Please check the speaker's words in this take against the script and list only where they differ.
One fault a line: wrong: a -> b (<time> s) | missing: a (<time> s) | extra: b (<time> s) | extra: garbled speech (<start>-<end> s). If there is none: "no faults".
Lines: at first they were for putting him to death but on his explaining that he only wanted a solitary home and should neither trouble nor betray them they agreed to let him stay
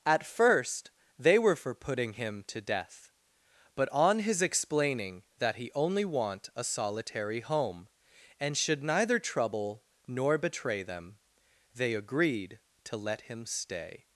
wrong: wanted -> want (6.0 s)